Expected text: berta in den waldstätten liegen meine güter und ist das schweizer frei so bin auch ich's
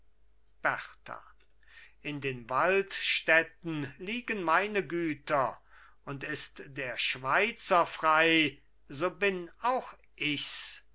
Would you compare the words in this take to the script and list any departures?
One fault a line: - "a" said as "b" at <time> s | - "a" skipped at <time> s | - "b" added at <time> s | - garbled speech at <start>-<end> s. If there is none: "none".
- "das" said as "der" at 6.7 s